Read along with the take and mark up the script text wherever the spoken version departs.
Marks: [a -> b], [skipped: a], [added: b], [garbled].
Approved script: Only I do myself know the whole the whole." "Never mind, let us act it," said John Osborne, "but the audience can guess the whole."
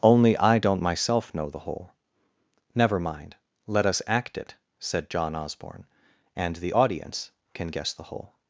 Only I [do -> don't] myself know the whole [skipped: the whole."] "Never mind, let us act it," said John Osborne, ["but -> and] the audience can guess the whole."